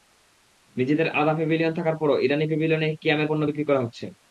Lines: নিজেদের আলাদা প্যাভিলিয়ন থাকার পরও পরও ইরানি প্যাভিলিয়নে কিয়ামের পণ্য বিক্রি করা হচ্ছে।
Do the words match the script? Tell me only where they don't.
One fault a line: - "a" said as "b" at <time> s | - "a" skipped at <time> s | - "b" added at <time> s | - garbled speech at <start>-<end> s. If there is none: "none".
- "পরও" skipped at 2.2 s